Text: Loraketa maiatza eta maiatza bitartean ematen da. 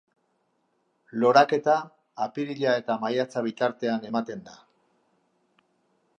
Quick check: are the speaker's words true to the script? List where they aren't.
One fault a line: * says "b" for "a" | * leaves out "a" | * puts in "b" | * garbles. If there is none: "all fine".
* says "apirila" for "maiatza"